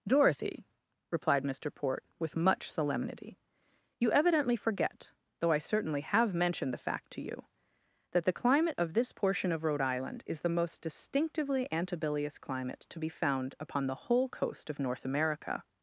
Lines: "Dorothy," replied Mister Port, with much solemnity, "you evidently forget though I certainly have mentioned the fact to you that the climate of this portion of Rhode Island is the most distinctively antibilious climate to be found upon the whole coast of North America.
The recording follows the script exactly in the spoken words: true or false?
true